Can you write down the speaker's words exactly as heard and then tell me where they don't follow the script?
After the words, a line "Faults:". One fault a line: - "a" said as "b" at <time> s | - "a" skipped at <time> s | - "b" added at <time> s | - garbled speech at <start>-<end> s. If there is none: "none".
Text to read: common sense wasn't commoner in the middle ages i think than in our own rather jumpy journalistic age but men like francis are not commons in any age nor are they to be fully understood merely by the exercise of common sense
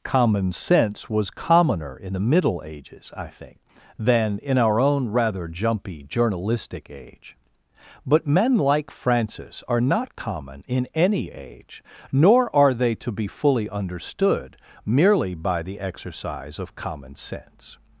common sense was commoner in the middle ages i think than in our own rather jumpy journalistic age but men like francis are not common in any age nor are they to be fully understood merely by the exercise of common sense
Faults:
- "wasn't" said as "was" at 1.1 s
- "commons" said as "common" at 10.2 s